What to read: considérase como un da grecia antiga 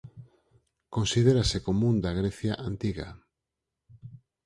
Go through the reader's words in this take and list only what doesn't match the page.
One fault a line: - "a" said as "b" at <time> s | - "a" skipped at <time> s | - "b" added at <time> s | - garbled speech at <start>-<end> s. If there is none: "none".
none